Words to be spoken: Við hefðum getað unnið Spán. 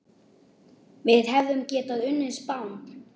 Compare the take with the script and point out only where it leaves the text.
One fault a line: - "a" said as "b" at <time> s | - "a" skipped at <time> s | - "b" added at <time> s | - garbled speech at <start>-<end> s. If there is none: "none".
none